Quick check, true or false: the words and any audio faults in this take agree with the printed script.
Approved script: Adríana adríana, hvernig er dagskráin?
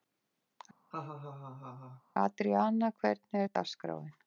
false